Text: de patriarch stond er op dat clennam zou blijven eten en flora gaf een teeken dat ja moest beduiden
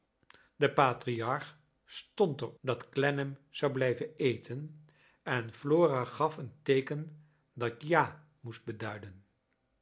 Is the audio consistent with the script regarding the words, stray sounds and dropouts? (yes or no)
no